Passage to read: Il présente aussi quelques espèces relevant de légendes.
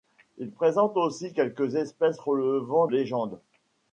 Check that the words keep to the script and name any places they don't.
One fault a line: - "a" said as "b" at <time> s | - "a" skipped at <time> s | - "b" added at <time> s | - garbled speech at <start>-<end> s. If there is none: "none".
- "de" skipped at 2.9 s